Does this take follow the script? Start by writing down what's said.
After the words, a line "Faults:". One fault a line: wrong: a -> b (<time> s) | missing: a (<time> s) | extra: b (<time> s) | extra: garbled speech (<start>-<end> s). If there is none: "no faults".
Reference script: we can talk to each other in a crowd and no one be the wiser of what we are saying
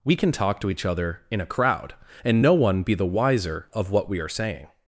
we can talk to each other in a crowd and no one be the wiser of what we are saying
Faults:
no faults